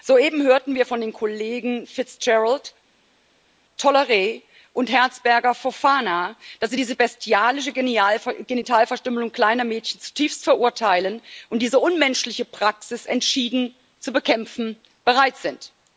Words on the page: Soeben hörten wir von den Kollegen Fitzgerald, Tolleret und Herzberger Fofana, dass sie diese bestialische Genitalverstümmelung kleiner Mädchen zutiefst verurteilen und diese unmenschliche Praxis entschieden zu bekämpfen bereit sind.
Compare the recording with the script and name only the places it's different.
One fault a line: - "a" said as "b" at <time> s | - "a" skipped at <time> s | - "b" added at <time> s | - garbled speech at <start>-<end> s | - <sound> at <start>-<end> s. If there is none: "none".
none